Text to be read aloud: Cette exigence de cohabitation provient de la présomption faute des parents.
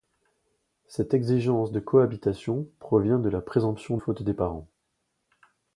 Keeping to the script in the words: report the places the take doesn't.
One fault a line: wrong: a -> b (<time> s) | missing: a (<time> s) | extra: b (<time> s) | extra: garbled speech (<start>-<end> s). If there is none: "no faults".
no faults